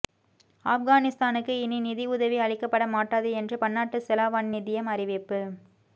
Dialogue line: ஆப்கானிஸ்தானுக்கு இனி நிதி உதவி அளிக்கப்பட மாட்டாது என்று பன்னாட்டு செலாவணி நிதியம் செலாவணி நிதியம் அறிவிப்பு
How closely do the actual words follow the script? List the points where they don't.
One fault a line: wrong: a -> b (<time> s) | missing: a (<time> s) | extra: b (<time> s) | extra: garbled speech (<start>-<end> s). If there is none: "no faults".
missing: செலாவணி நிதியம் (4.9 s)